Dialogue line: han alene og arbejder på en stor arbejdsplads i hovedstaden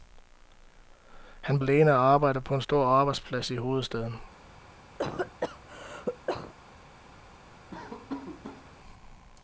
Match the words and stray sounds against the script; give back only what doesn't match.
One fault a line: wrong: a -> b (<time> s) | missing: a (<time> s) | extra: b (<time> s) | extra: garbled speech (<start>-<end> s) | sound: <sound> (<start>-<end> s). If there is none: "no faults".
sound: cough (5.0-6.5 s)
sound: laugh (7.7-8.7 s)